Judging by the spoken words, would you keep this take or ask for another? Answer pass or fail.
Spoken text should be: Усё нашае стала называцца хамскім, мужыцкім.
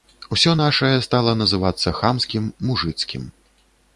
pass